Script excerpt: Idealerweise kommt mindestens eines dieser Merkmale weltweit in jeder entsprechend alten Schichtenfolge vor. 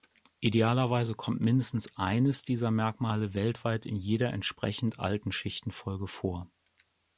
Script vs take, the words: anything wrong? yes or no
no